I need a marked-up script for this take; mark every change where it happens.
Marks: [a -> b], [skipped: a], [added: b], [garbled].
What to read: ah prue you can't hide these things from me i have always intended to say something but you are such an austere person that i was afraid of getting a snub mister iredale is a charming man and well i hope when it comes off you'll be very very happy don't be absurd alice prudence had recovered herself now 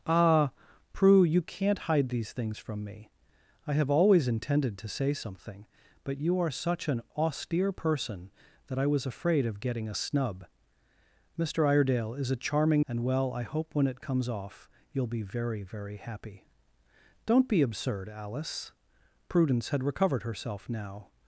ah prue you can't hide these things from me i have always intended to say something but you are such an austere person that i was afraid of getting a snub mister iredale is a charming [skipped: man] and well i hope when it comes off you'll be very very happy don't be absurd alice prudence had recovered herself now